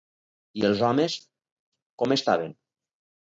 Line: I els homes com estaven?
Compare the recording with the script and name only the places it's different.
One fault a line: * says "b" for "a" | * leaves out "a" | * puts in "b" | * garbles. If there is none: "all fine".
all fine